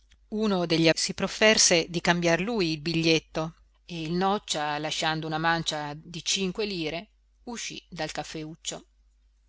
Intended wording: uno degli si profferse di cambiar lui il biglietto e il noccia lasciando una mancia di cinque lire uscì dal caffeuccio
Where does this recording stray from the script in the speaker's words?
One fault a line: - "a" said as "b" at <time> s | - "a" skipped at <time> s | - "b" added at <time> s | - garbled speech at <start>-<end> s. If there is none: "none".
none